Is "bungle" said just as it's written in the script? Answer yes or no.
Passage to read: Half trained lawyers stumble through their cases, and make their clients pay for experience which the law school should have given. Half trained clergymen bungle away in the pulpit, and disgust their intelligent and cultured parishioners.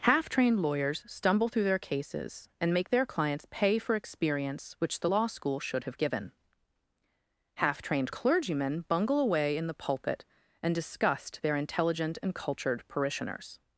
yes